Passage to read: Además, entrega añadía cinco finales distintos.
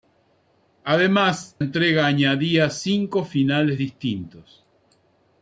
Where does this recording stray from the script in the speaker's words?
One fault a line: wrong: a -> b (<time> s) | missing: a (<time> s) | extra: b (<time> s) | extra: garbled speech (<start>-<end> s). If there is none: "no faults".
no faults